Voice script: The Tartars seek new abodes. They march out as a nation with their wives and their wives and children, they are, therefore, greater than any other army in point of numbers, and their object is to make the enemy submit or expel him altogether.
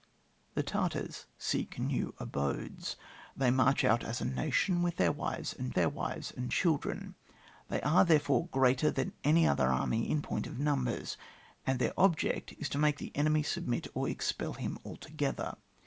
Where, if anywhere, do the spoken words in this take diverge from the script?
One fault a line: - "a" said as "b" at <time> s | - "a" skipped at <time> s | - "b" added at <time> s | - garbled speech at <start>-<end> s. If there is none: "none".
none